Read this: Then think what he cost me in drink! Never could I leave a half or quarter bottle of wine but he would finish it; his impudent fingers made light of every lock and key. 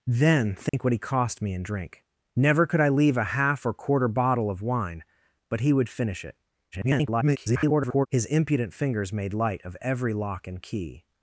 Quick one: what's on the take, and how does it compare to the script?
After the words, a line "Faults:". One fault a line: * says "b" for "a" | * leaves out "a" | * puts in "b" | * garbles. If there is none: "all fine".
Then think what he cost me in drink! Never could I leave a half or quarter bottle of wine but he would finish it; [garbled] his impudent fingers made light of every lock and key.
Faults:
* garbles